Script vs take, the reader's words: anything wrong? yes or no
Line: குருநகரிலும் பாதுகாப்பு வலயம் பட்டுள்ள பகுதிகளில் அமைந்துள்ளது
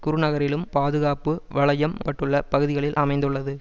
no